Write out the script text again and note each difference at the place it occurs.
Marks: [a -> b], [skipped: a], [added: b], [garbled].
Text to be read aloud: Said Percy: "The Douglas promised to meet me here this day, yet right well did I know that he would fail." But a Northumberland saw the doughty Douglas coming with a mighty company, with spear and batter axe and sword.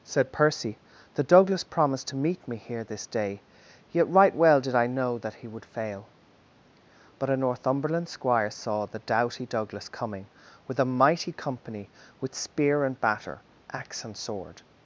Said Percy: "The Douglas promised to meet me here this day, yet right well did I know that he would fail." But a Northumberland [added: squire] saw the doughty Douglas coming with a mighty company, with spear and batter axe and sword.